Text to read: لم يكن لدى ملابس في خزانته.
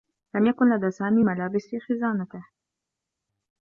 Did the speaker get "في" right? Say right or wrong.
right